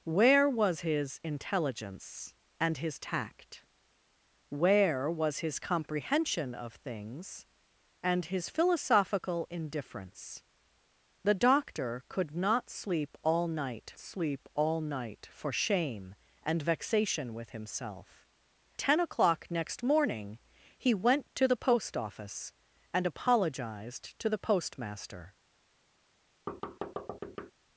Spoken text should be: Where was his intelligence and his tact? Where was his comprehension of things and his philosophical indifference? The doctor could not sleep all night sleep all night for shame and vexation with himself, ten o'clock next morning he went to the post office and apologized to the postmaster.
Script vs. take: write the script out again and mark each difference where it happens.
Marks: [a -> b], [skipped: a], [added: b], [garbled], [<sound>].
Where was his intelligence and his tact? Where was his comprehension of things and his philosophical indifference? The doctor could not sleep all night sleep all night for shame and vexation with himself, ten o'clock next morning he went to the post office and apologized to the postmaster. [thud]